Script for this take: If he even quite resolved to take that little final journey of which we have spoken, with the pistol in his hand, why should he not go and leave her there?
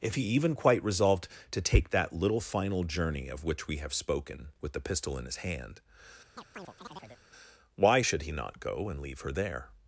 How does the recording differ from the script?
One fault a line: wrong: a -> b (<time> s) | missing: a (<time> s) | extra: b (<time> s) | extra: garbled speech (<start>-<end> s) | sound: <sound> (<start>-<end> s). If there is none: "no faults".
sound: chirp (6.4-7.2 s)